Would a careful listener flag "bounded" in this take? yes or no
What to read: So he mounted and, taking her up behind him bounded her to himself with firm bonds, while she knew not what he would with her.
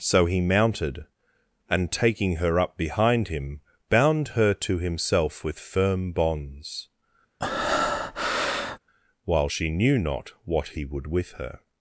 yes